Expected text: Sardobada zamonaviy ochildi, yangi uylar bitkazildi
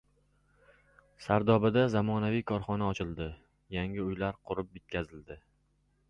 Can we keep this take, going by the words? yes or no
no